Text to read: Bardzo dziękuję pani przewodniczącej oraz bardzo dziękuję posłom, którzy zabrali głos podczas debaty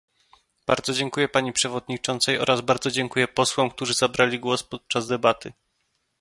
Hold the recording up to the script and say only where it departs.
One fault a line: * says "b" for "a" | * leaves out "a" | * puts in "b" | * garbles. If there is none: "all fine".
all fine